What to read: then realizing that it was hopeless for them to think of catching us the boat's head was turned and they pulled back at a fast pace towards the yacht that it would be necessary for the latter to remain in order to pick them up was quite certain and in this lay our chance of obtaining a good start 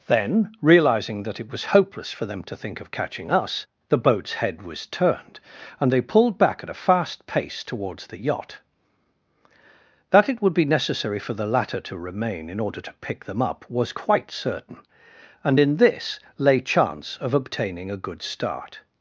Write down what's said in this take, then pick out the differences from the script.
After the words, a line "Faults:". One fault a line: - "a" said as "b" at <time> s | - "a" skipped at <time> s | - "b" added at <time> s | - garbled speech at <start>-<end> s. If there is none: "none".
then realizing that it was hopeless for them to think of catching us the boat's head was turned and they pulled back at a fast pace towards the yacht that it would be necessary for the latter to remain in order to pick them up was quite certain and in this lay chance of obtaining a good start
Faults:
- "our" skipped at 16.6 s